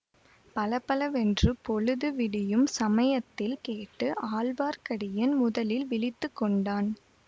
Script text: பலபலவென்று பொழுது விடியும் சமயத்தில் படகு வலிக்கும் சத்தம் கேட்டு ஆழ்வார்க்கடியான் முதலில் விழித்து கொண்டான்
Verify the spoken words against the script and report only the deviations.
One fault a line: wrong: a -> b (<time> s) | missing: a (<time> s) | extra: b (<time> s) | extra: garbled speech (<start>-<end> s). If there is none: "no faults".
missing: படகு வலிக்கும் சத்தம் (3.5 s)